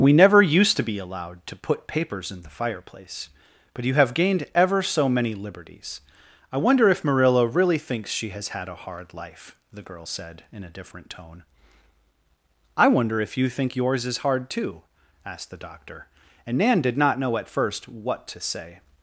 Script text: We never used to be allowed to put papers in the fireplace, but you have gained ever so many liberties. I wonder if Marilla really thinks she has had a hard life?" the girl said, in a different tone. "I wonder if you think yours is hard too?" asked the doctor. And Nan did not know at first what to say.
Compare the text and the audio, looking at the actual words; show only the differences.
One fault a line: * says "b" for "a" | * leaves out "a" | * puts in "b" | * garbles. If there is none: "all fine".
all fine